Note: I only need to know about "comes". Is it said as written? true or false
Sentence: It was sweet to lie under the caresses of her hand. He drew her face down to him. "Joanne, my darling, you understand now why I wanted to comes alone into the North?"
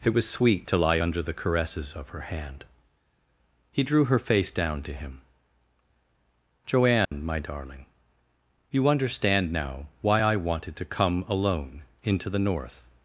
false